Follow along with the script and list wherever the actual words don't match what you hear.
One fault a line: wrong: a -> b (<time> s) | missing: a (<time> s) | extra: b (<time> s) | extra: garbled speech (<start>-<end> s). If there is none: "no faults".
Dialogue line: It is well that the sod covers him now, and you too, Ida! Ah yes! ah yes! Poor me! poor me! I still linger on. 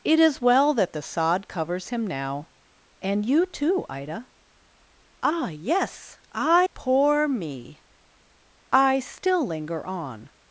missing: yes Poor me (6.6 s)